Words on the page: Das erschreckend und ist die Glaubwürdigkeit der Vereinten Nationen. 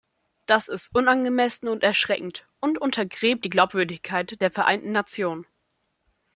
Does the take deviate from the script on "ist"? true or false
true